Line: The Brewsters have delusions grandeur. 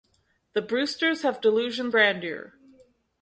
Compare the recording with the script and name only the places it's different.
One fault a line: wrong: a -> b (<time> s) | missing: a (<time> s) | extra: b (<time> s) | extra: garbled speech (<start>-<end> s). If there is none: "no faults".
no faults